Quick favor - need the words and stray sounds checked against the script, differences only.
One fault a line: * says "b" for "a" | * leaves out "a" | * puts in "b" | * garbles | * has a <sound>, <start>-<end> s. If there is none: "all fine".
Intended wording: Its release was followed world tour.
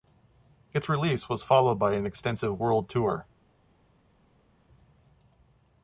* puts in "by an extensive"